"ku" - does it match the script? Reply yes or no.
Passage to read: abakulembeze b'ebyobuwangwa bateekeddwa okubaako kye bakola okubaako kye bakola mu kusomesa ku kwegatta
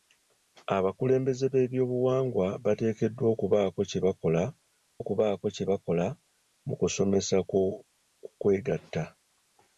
yes